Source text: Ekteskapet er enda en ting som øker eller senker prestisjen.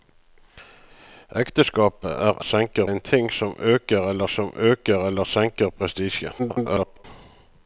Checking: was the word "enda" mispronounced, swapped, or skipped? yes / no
yes